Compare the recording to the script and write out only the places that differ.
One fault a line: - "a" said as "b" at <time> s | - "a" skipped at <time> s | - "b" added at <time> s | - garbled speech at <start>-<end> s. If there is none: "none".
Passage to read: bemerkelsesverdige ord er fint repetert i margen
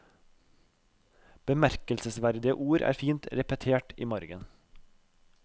none